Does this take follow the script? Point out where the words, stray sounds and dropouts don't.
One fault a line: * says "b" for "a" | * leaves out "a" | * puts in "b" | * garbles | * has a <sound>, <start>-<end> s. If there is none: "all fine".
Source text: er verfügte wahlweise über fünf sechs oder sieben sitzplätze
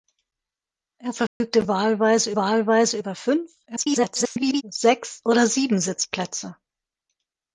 * has a dropout, 1.3-1.4 s
* puts in "wahlweise"
* garbles